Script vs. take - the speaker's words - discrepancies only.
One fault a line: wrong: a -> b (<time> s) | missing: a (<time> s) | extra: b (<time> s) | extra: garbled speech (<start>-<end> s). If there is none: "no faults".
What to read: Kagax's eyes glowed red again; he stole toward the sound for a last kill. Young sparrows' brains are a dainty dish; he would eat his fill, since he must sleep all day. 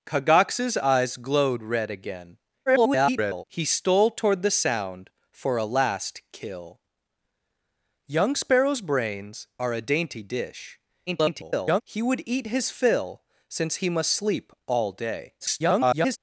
extra: garbled speech (2.7-3.4 s)
extra: garbled speech (11.1-11.8 s)
extra: garbled speech (15.4-16.2 s)